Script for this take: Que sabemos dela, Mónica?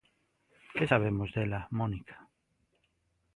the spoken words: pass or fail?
pass